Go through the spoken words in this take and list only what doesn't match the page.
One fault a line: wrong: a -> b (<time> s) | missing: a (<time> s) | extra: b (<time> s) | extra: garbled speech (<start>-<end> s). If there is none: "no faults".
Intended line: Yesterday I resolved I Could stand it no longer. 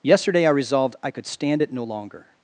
no faults